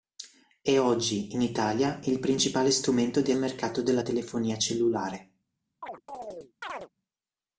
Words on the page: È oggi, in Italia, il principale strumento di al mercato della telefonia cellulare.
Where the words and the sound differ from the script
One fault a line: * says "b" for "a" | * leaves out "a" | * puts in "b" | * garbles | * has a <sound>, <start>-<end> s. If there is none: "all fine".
* has a chirp, 5.8-6.9 s